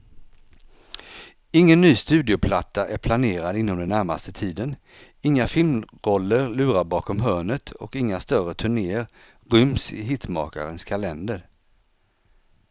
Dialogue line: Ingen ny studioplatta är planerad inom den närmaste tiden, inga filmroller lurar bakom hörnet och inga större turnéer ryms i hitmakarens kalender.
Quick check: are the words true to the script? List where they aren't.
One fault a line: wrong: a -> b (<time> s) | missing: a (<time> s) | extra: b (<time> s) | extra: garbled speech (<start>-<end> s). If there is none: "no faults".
no faults